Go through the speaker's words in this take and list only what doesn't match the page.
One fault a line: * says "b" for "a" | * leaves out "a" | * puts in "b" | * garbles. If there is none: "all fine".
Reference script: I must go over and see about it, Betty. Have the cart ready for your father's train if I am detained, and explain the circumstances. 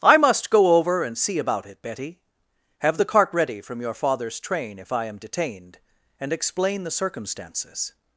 * says "from" for "for"